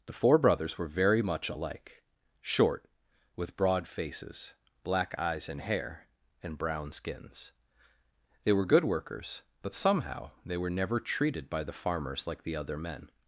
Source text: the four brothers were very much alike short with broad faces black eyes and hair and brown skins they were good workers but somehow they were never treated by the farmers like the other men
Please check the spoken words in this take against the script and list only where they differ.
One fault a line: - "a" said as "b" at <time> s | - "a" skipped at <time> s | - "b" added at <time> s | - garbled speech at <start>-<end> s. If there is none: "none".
none